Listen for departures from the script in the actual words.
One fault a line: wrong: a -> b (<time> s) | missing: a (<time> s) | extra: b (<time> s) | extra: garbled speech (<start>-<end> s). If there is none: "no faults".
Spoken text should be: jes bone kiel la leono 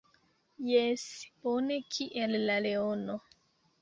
no faults